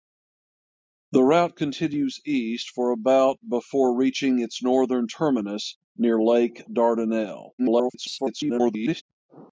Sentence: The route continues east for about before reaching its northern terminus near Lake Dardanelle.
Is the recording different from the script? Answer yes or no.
yes